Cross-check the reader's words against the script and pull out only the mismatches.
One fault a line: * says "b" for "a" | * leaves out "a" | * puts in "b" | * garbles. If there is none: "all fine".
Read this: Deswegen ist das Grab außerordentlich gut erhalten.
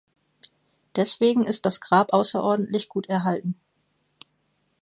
all fine